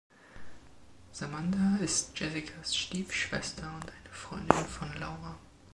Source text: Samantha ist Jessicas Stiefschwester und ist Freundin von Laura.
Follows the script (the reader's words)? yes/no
no